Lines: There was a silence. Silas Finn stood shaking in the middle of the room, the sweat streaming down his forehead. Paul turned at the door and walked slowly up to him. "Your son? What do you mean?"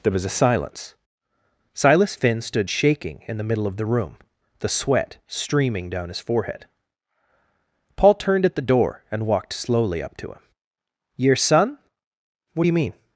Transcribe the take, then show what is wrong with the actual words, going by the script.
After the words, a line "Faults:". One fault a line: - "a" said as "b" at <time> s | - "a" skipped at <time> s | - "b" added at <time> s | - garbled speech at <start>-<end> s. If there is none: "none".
There was a silence. Silas Finn stood shaking in the middle of the room, the sweat streaming down his forehead. Paul turned at the door and walked slowly up to him. "Your son? What do you mean?"
Faults:
none